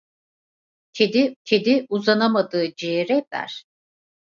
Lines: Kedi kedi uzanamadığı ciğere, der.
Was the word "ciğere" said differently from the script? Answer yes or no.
no